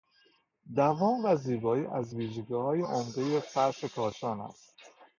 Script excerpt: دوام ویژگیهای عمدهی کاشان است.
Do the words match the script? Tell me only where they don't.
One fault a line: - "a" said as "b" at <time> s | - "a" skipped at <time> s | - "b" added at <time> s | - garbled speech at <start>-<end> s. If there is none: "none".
- "و زیبایی از" added at 1.2 s
- "فرش" added at 3.4 s